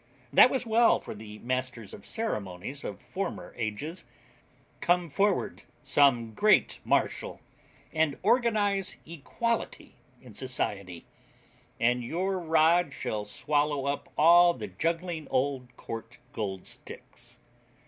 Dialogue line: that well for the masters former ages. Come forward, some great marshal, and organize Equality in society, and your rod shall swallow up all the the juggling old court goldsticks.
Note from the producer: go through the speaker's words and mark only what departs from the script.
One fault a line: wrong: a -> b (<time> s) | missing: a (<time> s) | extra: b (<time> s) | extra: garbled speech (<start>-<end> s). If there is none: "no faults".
extra: was (0.5 s)
extra: of ceremonies of (1.9 s)
missing: the (14.7 s)